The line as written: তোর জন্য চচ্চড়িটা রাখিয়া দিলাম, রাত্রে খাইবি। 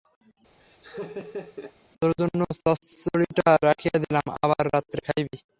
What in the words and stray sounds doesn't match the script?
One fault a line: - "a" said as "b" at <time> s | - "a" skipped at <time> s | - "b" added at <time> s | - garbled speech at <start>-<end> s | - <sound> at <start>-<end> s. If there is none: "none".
- laugh at 0.6-1.7 s
- "আবার" added at 4.4 s